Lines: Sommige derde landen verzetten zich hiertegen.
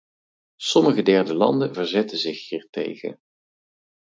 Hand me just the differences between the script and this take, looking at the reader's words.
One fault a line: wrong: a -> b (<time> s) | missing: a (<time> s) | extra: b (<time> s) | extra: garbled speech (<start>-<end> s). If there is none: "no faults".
no faults